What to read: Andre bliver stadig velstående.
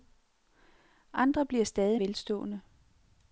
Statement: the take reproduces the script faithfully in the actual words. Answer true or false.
true